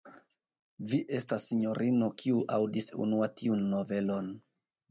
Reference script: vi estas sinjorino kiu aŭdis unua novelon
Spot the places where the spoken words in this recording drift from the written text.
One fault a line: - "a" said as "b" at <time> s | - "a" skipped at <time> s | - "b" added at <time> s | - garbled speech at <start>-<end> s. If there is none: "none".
- "tiun" added at 3.4 s